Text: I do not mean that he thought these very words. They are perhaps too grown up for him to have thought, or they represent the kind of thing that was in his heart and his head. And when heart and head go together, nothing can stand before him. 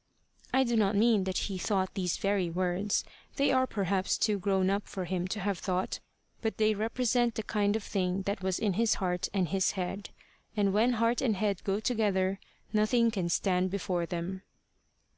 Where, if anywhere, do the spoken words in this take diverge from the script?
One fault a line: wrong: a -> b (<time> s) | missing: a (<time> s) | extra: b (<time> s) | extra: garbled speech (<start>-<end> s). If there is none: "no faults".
wrong: or -> but (6.4 s)
wrong: him -> them (14.1 s)